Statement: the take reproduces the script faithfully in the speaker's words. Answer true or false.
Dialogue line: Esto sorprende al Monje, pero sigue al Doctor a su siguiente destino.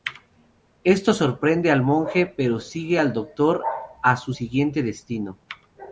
true